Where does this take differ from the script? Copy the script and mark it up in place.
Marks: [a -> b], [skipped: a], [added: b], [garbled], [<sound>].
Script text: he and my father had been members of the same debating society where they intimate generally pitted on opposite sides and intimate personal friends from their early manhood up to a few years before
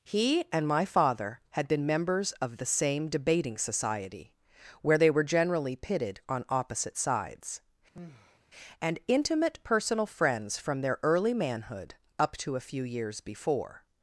he and my father had been members of the same debating society where they [intimate -> were] generally pitted on opposite sides [sigh] and intimate personal friends from their early manhood up to a few years before